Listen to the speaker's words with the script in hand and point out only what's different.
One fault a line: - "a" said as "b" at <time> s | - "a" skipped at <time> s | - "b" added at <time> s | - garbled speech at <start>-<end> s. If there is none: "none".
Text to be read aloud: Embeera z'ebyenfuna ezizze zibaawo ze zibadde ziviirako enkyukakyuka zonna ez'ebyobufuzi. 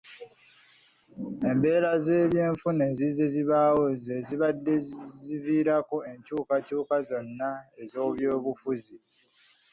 none